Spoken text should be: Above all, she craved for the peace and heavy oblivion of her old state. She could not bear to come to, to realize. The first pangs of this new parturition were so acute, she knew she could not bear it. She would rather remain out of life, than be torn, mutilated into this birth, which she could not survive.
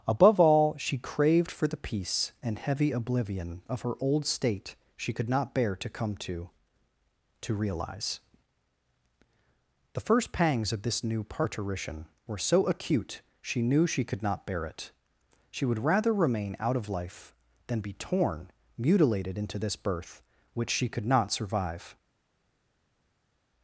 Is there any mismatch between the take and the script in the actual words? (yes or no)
no